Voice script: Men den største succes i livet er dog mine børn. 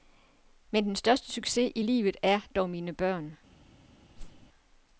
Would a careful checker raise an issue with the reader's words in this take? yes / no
no